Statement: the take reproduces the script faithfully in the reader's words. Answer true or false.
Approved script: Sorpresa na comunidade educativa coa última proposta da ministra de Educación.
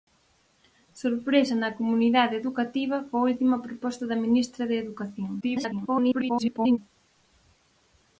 false